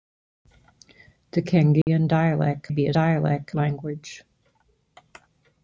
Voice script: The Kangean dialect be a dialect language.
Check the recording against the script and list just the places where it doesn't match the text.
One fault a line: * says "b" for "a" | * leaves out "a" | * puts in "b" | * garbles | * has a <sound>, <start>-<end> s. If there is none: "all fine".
* has a dropout, 1.8-1.9 s